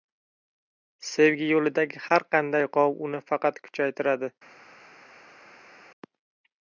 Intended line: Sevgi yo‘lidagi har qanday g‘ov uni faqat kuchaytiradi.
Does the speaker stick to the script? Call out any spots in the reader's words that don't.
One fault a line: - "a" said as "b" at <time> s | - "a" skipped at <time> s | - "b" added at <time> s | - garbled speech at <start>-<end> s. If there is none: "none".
none